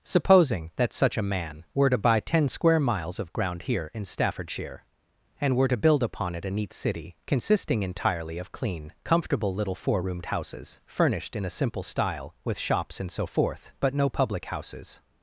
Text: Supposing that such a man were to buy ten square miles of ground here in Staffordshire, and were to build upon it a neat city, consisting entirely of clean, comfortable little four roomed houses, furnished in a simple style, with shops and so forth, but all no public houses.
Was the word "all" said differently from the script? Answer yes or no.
yes